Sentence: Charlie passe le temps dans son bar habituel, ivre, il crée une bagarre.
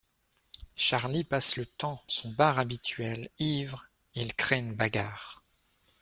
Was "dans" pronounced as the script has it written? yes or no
no